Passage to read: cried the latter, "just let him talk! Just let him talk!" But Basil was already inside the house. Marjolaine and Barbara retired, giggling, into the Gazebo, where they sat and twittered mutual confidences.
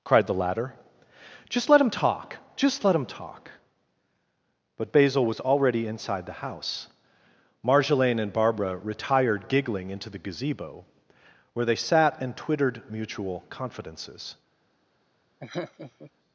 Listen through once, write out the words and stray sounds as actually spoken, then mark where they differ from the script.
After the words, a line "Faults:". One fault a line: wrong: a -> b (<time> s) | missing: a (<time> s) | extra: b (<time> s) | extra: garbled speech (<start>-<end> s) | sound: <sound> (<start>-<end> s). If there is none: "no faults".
cried the latter, "just let him talk! Just let him talk!" But Basil was already inside the house. Marjolaine and Barbara retired, giggling, into the Gazebo, where they sat and twittered mutual confidences.
Faults:
sound: laugh (15.4-16.1 s)